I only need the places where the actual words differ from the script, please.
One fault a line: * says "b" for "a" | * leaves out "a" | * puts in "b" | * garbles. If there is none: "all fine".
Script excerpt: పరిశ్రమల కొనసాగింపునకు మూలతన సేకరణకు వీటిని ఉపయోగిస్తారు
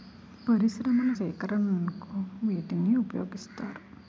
* leaves out "కొనసాగింపునకు మూలతన"